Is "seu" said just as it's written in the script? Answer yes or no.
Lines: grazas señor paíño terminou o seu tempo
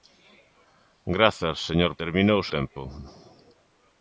no